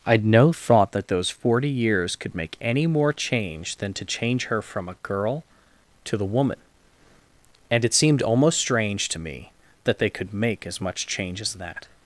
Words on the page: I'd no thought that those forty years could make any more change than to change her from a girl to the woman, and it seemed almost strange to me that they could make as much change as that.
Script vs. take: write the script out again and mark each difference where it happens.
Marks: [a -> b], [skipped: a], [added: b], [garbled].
I'd no thought that those forty years could make any more change than to change her from a girl to the woman, and it seemed almost strange to me that they could make as much change as that.